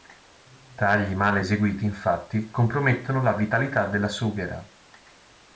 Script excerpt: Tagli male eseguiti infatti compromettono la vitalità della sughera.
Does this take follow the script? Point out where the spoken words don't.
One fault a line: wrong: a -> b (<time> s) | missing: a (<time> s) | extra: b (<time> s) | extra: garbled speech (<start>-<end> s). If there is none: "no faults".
no faults